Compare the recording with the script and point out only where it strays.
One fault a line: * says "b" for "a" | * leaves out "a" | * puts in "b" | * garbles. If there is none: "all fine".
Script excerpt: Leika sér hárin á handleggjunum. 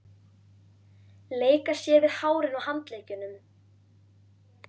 * puts in "við"